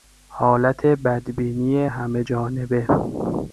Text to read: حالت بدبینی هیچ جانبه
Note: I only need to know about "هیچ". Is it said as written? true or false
false